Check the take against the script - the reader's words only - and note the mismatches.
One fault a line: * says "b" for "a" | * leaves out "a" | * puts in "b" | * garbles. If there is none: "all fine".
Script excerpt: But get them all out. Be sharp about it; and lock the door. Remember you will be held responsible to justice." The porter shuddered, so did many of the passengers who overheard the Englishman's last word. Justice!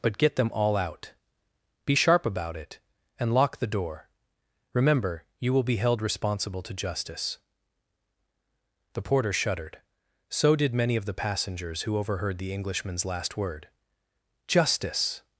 all fine